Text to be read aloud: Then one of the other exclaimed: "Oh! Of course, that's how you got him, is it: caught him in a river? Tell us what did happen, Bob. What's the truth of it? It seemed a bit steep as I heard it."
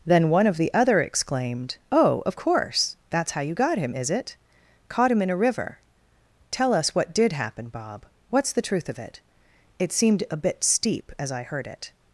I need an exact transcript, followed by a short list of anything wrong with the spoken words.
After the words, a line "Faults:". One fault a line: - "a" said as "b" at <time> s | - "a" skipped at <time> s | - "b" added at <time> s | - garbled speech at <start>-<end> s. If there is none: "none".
Then one of the other exclaimed: "Oh! Of course, that's how you got him, is it: caught him in a river? Tell us what did happen, Bob. What's the truth of it? It seemed a bit steep as I heard it."
Faults:
none